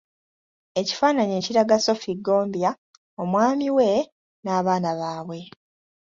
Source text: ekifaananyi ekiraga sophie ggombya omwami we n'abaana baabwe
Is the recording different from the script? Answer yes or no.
no